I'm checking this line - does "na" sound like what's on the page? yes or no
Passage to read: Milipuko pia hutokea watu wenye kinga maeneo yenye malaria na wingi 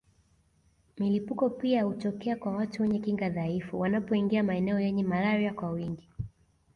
no